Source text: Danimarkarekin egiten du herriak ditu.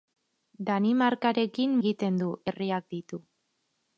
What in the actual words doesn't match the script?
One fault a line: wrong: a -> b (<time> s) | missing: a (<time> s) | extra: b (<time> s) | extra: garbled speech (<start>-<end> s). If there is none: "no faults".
no faults